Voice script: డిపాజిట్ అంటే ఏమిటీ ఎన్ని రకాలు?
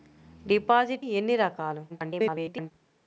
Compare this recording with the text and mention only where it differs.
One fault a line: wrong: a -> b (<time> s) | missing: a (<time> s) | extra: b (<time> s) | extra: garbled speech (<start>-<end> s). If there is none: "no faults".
missing: అంటే ఏమిటీ (1.1 s)
extra: garbled speech (1.9-2.7 s)